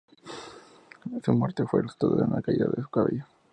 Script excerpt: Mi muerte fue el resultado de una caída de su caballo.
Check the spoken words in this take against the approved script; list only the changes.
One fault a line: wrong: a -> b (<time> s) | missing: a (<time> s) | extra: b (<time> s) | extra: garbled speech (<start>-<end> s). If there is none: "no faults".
wrong: Mi -> Su (1.2 s)